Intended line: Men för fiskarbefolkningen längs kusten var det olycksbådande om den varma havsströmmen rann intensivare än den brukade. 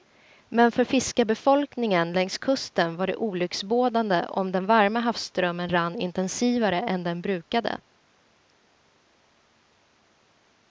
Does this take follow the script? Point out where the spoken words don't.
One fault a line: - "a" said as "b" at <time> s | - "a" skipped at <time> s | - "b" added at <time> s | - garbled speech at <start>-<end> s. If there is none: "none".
none